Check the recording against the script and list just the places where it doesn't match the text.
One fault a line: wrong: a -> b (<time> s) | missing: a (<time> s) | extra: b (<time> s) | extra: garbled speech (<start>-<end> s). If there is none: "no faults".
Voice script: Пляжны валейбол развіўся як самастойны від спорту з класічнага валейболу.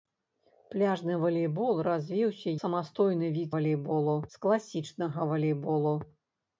missing: як (2.5 s)
wrong: спорту -> валейболу (3.6 s)